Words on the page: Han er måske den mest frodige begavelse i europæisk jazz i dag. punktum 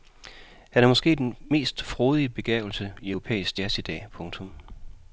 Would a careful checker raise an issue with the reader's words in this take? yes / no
no